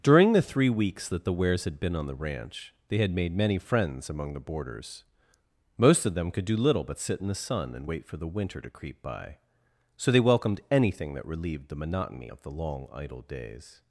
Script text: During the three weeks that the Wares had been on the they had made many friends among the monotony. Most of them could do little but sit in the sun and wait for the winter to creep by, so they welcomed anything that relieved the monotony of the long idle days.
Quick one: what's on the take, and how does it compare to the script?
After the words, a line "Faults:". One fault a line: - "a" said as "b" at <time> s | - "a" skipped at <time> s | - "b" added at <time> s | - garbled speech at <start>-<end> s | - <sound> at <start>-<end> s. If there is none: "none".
During the three weeks that the Wares had been on the ranch they had made many friends among the boarders. Most of them could do little but sit in the sun and wait for the winter to creep by, so they welcomed anything that relieved the monotony of the long idle days.
Faults:
- "ranch" added at 2.1 s
- "monotony" said as "boarders" at 4.4 s